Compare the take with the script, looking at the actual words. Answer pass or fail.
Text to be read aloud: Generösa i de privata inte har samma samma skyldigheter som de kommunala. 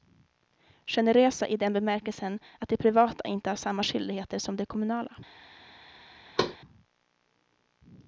fail